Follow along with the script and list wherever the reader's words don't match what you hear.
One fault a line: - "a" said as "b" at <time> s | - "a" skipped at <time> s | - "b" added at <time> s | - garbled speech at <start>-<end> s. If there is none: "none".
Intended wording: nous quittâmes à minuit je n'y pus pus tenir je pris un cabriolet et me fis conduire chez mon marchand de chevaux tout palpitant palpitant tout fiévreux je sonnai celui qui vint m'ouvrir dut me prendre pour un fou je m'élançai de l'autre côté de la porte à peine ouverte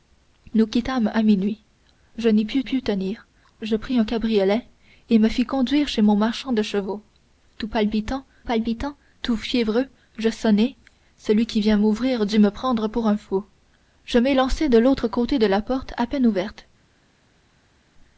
none